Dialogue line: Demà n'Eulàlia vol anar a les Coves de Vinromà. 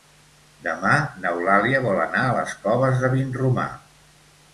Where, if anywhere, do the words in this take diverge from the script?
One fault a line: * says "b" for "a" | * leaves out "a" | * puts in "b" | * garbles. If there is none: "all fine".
all fine